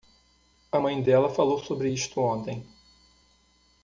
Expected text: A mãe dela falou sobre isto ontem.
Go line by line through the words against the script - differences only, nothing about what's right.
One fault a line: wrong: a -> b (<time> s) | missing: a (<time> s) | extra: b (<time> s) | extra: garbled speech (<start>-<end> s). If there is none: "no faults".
no faults